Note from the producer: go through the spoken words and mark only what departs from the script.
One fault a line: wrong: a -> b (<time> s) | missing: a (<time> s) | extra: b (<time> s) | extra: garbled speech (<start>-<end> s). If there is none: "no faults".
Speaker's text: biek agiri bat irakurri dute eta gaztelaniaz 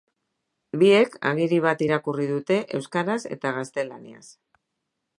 extra: euskaraz (2.8 s)